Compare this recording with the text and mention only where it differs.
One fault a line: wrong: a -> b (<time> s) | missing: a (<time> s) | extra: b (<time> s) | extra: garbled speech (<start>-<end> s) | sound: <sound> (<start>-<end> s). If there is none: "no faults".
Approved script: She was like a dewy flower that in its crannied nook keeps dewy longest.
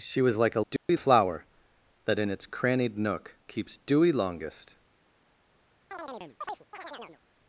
sound: dropout (0.8-0.9 s)
sound: chirp (5.9-7.2 s)